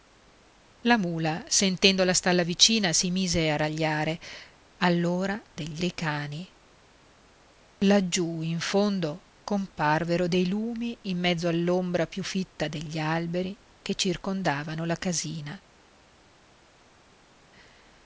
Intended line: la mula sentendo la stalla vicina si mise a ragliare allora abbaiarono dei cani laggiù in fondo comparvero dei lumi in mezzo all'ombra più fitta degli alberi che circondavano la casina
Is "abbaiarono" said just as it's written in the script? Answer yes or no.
no